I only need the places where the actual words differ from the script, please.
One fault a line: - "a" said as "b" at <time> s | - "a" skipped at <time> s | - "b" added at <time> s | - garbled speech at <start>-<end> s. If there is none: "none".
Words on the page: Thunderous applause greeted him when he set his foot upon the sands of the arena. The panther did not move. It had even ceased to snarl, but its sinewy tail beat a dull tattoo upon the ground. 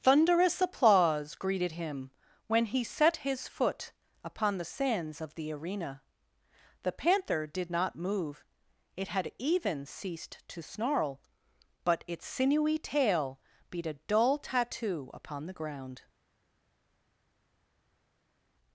none